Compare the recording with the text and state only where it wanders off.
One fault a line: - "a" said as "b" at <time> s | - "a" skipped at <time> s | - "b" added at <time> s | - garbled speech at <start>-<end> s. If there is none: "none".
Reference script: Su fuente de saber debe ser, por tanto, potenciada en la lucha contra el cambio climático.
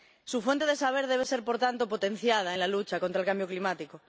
none